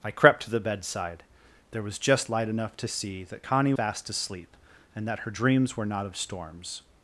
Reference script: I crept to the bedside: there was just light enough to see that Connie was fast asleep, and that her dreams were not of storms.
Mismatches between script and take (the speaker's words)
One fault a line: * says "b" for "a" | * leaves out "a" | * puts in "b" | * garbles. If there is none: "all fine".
* leaves out "was"